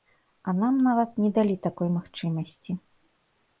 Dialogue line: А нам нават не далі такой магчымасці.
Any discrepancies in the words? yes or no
no